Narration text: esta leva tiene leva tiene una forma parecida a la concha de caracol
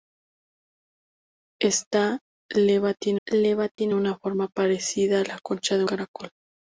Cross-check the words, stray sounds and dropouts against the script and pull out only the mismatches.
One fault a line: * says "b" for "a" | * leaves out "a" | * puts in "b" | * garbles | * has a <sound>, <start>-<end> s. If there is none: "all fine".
* has a dropout, 3.8-3.8 s